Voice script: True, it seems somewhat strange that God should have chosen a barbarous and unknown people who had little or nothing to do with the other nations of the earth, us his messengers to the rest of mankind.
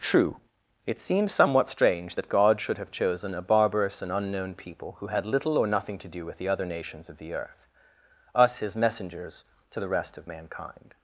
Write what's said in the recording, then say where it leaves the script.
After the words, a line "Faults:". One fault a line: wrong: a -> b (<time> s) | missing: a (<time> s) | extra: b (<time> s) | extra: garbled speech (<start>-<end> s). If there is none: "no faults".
True, it seems somewhat strange that God should have chosen a barbarous and unknown people who had little or nothing to do with the other nations of the earth, us his messengers to the rest of mankind.
Faults:
no faults